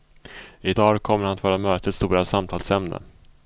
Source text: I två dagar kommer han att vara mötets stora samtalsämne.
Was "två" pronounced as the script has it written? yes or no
no